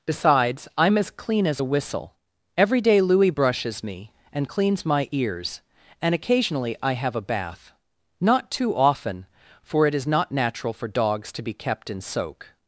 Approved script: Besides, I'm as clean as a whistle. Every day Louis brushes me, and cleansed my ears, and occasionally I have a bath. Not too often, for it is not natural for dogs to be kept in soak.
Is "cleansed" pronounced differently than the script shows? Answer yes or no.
yes